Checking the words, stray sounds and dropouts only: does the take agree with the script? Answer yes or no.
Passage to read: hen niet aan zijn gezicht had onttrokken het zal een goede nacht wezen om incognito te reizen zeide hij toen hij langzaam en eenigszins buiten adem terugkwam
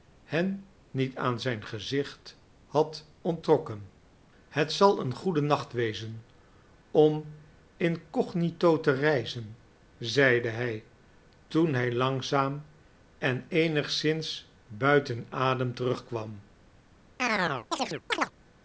no